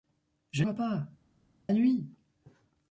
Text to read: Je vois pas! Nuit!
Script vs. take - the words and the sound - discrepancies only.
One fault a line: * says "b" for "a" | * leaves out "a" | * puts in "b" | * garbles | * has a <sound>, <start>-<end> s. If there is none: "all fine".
all fine